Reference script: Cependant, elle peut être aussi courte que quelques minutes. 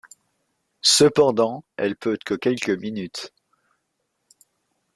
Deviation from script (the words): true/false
true